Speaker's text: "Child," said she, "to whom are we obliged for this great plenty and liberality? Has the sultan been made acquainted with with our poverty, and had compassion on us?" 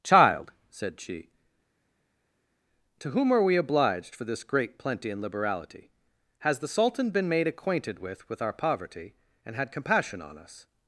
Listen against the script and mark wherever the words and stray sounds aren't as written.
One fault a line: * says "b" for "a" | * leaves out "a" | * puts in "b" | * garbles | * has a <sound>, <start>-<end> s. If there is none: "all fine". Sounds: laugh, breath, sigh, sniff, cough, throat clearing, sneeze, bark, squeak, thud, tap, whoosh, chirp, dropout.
all fine